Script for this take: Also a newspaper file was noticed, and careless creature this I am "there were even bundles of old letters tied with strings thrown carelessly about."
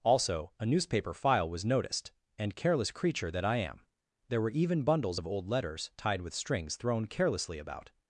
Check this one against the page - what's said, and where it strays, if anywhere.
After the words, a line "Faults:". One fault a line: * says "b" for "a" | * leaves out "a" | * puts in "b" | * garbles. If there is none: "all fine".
Also a newspaper file was noticed, and careless creature that I am "there were even bundles of old letters tied with strings thrown carelessly about."
Faults:
* says "that" for "this"